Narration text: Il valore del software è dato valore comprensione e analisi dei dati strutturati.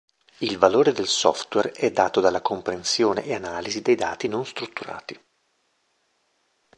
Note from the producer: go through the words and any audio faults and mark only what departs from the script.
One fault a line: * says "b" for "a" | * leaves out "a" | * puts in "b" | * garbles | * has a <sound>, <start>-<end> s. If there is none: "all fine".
* says "dalla" for "valore"
* puts in "non"